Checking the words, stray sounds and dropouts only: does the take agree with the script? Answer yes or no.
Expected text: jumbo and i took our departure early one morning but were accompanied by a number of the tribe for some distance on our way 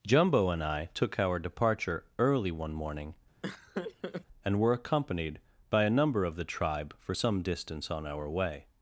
no